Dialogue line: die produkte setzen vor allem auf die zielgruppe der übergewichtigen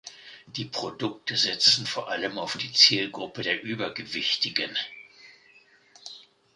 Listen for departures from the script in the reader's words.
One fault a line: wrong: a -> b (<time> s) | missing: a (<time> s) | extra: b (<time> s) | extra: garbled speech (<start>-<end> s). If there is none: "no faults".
no faults